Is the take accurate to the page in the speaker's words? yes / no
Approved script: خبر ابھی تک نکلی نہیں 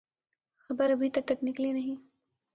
no